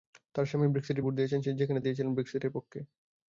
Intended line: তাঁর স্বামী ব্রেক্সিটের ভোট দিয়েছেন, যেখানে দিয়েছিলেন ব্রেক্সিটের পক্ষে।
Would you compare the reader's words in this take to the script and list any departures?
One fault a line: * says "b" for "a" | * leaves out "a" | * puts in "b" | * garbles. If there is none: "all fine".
all fine